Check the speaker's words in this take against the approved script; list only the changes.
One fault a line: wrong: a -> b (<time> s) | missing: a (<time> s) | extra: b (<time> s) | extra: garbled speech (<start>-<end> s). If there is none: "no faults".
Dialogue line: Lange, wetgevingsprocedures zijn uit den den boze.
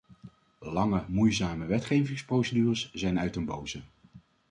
extra: moeizame (1.1 s)
missing: den (3.4 s)